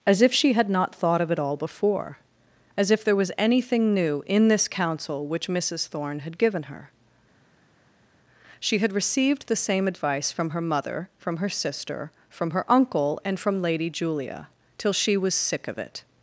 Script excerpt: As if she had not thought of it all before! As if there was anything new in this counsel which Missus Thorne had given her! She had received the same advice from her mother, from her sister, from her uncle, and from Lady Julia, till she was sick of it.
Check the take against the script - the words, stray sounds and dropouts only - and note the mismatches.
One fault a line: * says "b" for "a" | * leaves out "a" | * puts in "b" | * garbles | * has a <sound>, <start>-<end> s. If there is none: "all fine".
all fine